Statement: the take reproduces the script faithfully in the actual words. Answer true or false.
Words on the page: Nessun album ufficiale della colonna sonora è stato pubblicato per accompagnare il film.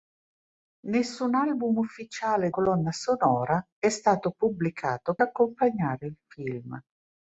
false